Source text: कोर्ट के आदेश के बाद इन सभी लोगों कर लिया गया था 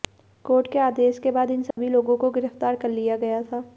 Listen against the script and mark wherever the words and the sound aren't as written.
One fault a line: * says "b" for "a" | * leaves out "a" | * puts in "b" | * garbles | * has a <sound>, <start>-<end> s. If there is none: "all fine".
* has a dropout, 1.7-1.8 s
* puts in "को गिरफ्तार"